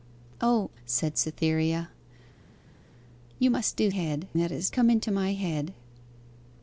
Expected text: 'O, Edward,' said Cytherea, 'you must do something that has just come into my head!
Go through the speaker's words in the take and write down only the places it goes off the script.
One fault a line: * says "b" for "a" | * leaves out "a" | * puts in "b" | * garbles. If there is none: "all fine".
* leaves out "Edward"
* says "head" for "something"
* leaves out "just"